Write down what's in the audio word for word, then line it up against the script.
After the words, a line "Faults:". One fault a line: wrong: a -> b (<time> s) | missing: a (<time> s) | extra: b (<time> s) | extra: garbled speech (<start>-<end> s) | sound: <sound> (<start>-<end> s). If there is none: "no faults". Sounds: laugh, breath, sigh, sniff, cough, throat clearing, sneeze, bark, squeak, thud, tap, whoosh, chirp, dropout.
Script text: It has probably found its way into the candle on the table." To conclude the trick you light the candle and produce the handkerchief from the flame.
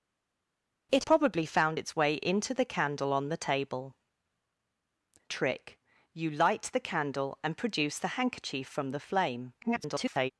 It probably found its way into the candle on the table." Trick you light the candle and produce the handkerchief from the flame. [garbled]
Faults:
missing: has (1.0 s)
missing: To conclude the (4.0 s)
extra: garbled speech (9.6-10.3 s)